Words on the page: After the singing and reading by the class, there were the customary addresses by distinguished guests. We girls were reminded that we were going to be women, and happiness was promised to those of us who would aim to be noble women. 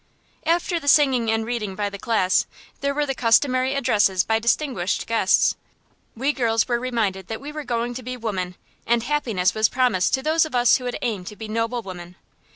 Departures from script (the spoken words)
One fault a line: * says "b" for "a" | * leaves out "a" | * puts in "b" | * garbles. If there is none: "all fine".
all fine